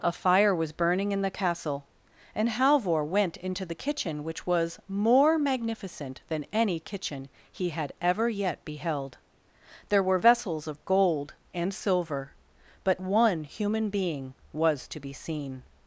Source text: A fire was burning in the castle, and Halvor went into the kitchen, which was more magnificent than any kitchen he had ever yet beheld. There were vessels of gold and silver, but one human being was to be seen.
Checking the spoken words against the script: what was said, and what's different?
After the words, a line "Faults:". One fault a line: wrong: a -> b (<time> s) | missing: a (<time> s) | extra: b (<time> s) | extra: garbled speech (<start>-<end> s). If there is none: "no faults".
A fire was burning in the castle, and Halvor went into the kitchen, which was more magnificent than any kitchen he had ever yet beheld. There were vessels of gold and silver, but one human being was to be seen.
Faults:
no faults